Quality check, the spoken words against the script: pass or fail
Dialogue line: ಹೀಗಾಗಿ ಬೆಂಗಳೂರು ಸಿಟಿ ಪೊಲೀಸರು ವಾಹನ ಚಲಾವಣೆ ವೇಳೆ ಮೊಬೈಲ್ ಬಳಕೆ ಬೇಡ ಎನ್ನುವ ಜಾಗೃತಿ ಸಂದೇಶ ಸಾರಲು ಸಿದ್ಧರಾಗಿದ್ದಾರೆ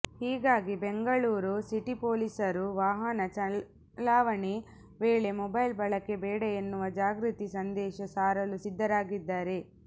pass